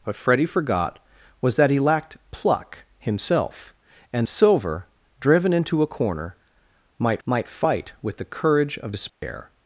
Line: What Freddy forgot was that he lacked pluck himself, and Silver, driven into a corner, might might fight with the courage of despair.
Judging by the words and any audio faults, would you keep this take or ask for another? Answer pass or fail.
fail